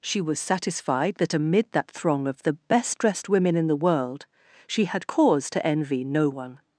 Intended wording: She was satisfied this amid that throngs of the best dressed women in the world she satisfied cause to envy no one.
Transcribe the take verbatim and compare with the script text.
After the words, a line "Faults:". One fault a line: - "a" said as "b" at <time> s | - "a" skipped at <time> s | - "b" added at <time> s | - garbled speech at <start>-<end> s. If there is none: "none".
She was satisfied that amid that throng of the best dressed women in the world she had cause to envy no one.
Faults:
- "this" said as "that" at 1.1 s
- "throngs" said as "throng" at 1.9 s
- "satisfied" said as "had" at 4.9 s